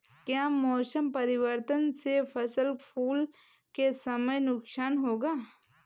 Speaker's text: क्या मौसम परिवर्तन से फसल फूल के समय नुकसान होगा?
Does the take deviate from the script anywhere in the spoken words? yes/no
no